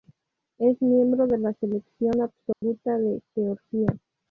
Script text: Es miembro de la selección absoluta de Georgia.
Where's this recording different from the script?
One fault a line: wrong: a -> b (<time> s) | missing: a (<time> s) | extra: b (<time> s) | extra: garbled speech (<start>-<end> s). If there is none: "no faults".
no faults